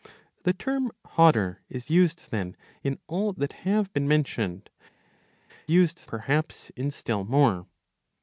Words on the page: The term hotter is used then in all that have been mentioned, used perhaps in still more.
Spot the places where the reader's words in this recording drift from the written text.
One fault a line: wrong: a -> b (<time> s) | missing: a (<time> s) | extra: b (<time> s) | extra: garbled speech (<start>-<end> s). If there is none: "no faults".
no faults